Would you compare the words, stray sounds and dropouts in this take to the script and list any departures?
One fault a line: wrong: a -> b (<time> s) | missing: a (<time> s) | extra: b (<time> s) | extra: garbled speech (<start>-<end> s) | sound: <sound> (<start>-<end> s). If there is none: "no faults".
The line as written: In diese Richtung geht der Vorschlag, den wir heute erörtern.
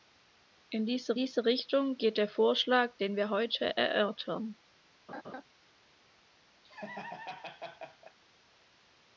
extra: diese (1.2 s)
sound: laugh (5.1-5.4 s)
sound: laugh (6.6-8.2 s)